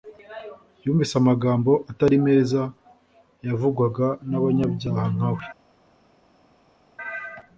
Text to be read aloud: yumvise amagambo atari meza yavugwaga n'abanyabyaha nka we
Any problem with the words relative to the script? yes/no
no